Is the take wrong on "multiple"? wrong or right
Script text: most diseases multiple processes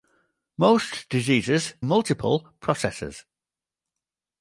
right